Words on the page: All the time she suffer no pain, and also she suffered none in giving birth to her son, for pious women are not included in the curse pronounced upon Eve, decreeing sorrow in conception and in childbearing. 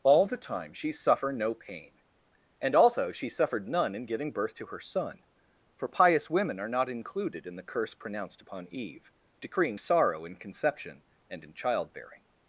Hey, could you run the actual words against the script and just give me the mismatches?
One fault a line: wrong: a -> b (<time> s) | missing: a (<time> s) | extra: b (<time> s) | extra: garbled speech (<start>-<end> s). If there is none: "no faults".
no faults